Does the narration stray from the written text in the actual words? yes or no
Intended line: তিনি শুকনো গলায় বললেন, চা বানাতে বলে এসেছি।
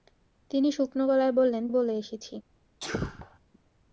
yes